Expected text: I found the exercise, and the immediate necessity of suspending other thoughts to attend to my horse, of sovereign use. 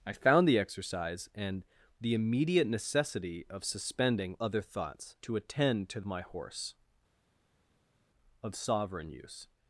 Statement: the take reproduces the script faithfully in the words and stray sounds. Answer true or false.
true